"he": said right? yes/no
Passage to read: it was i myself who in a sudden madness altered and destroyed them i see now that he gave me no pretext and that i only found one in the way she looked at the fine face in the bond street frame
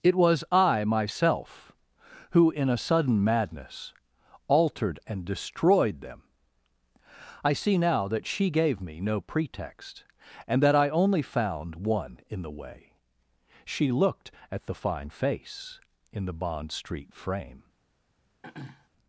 no